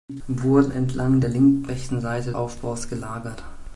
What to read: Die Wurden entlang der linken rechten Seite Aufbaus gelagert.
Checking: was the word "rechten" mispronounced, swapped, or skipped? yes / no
no